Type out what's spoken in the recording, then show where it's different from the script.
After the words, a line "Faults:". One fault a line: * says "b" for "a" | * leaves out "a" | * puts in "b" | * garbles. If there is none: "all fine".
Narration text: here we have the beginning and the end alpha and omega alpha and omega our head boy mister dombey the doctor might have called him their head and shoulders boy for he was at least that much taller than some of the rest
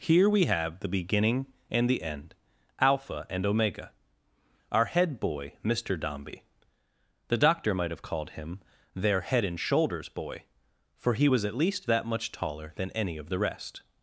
here we have the beginning and the end alpha and omega our head boy mister dombey the doctor might have called him their head and shoulders boy for he was at least that much taller than any of the rest
Faults:
* leaves out "alpha and omega"
* says "any" for "some"